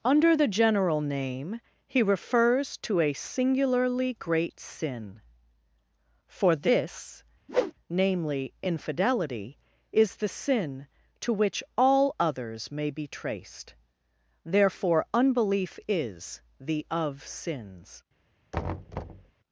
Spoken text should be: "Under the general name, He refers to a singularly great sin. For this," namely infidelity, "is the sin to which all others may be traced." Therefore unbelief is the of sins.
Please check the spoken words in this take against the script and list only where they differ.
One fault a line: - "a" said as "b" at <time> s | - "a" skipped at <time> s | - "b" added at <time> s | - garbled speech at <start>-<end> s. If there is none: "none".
none